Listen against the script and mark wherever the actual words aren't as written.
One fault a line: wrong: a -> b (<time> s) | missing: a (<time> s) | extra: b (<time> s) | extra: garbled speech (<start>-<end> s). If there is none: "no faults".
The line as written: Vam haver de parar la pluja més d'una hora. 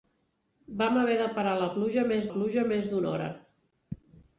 extra: pluja més (2.3 s)